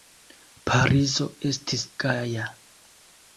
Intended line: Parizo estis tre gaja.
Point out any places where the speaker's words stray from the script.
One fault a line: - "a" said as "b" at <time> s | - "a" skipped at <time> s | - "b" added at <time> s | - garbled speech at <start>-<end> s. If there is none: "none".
- "tre" skipped at 1.8 s